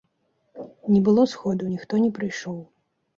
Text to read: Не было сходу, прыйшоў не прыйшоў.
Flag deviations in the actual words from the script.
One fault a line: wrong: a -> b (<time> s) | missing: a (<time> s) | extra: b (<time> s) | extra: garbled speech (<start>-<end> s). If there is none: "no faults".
wrong: прыйшоў -> ніхто (1.7 s)